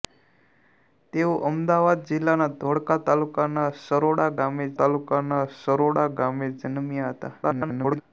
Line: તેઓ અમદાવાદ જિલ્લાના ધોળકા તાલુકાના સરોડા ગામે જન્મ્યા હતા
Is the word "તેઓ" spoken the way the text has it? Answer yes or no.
yes